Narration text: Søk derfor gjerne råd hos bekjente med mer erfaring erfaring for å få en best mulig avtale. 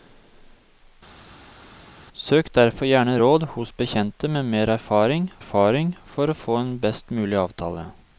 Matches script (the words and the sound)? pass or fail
pass